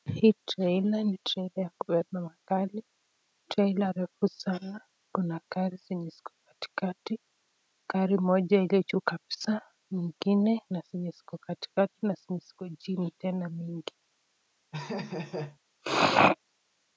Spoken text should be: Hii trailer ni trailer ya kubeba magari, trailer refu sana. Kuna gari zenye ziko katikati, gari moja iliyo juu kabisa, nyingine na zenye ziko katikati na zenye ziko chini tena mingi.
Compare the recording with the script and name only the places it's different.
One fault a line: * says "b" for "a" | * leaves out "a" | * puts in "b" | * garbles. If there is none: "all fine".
all fine